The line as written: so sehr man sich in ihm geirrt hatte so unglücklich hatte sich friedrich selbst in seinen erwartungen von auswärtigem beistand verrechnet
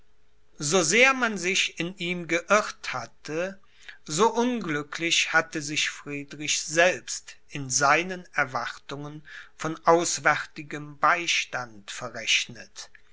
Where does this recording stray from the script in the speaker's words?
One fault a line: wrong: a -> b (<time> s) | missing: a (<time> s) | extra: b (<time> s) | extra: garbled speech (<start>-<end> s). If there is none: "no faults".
no faults